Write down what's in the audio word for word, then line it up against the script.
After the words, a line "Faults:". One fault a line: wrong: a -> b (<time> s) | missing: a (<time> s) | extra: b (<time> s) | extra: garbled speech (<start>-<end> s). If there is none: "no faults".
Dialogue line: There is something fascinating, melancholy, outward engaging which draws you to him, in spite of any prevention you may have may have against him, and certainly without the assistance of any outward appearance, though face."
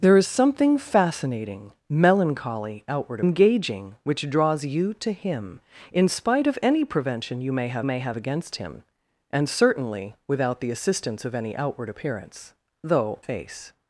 There is something fascinating, melancholy, outward engaging which draws you to him, in spite of any prevention you may have may have against him, and certainly without the assistance of any outward appearance, though face."
Faults:
no faults